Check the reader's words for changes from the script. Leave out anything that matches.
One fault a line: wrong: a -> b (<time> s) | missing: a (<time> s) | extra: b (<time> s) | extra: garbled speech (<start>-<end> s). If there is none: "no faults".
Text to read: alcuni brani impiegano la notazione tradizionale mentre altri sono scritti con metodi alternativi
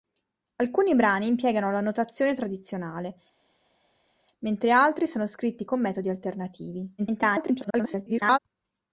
extra: garbled speech (7.0-8.4 s)